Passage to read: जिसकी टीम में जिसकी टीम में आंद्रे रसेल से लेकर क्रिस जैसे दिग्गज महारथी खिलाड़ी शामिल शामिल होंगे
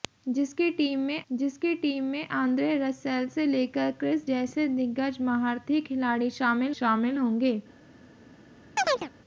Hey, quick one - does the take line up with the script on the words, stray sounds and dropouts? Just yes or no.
no